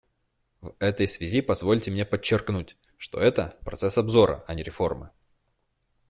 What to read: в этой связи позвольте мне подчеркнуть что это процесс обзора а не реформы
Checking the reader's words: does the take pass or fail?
pass